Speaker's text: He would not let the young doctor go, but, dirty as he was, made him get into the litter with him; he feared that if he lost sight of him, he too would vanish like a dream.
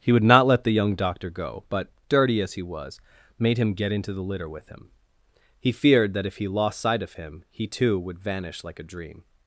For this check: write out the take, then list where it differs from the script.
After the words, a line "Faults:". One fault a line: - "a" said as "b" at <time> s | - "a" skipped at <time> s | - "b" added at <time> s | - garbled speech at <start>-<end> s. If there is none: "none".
He would not let the young doctor go, but, dirty as he was, made him get into the litter with him; he feared that if he lost sight of him, he too would vanish like a dream.
Faults:
none